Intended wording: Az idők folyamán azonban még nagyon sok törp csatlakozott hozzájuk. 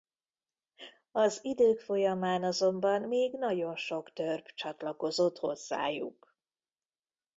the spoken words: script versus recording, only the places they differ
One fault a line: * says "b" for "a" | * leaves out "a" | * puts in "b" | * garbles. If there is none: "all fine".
all fine